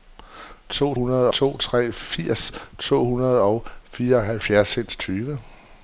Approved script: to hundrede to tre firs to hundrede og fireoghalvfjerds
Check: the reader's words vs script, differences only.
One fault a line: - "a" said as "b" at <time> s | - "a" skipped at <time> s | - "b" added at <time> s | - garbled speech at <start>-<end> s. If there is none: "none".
none